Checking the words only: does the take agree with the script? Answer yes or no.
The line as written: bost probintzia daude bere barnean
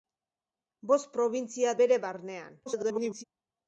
no